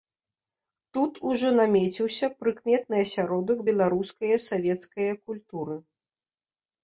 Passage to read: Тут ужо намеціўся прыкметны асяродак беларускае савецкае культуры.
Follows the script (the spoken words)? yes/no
yes